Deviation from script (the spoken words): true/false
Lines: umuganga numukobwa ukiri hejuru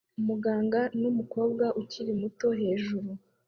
true